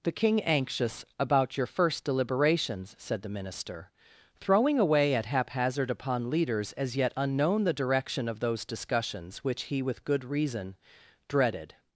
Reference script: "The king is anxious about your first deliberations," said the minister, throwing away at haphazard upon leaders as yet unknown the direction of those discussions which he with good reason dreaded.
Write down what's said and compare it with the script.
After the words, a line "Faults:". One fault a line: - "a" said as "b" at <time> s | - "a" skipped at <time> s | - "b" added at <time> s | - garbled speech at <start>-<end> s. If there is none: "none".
"The king anxious about your first deliberations," said the minister, throwing away at haphazard upon leaders as yet unknown the direction of those discussions which he with good reason dreaded.
Faults:
- "is" skipped at 0.4 s